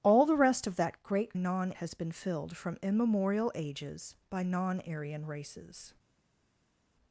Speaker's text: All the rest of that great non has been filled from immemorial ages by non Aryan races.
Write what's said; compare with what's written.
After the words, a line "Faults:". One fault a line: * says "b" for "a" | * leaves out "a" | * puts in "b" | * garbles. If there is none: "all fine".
All the rest of that great non has been filled from immemorial ages by non Aryan races.
Faults:
all fine